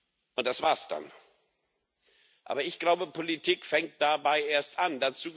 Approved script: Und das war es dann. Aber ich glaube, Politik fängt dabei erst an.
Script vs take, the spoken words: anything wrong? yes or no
no